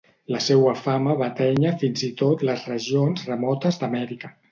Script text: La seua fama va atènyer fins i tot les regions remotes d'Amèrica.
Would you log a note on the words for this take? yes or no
no